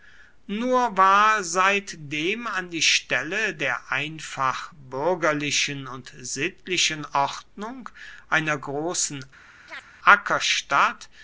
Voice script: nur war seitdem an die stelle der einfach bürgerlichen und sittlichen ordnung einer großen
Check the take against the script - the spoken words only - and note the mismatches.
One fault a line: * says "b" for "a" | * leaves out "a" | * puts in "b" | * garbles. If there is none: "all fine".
all fine